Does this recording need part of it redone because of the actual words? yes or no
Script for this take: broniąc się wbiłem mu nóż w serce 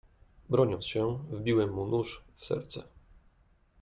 no